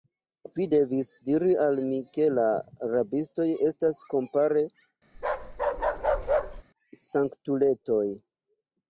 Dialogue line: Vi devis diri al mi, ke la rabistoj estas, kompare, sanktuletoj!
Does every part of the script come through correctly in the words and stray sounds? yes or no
no